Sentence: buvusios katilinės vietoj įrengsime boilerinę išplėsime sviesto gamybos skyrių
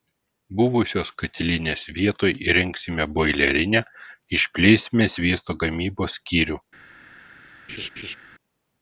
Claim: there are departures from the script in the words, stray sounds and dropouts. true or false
true